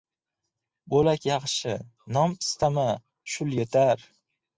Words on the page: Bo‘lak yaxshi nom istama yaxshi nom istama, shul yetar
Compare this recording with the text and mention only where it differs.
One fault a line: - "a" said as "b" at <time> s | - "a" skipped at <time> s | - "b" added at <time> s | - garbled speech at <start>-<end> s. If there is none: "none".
- "yaxshi nom istama" skipped at 2.9 s